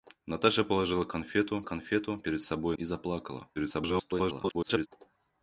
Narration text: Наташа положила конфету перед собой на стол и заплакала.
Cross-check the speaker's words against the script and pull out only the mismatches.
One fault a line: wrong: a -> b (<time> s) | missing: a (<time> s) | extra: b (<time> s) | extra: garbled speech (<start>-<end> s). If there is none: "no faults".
extra: конфету (1.6 s)
missing: на стол (2.8 s)
extra: garbled speech (3.6-4.9 s)